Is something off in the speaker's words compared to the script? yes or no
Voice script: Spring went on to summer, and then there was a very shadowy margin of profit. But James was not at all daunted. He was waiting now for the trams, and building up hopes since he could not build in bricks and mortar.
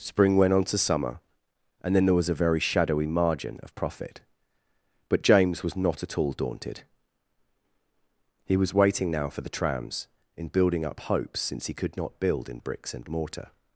yes